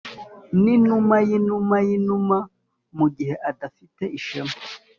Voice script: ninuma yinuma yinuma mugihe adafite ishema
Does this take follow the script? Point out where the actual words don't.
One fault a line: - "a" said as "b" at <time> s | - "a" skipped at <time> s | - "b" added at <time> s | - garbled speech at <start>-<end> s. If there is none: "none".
none